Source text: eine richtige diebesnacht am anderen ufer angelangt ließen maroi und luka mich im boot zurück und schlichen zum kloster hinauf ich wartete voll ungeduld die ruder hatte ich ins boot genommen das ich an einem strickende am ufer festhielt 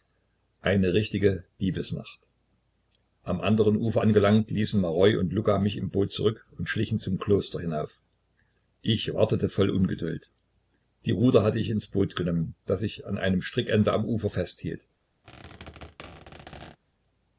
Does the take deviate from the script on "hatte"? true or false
false